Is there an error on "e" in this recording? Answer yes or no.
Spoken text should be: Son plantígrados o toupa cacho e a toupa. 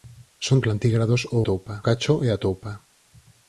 no